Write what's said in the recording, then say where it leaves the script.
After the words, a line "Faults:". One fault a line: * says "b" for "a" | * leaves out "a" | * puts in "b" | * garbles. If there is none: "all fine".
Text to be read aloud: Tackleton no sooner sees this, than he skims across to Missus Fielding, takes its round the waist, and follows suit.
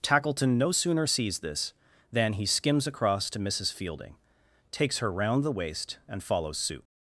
Tackleton no sooner sees this, than he skims across to Missus Fielding, takes her round the waist, and follows suit.
Faults:
* says "her" for "its"